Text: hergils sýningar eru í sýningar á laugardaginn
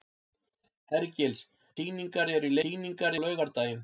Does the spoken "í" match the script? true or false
true